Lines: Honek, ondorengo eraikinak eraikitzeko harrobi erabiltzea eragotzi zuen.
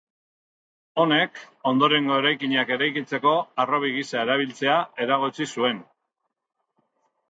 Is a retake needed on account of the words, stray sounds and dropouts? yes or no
yes